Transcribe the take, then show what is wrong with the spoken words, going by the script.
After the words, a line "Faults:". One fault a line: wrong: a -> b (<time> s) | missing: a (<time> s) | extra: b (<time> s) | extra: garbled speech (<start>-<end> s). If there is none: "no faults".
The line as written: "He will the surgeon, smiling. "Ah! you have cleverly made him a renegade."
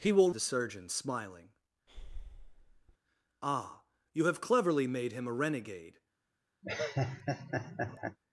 "He will the surgeon, smiling. "Ah! you have cleverly made him a renegade."
Faults:
no faults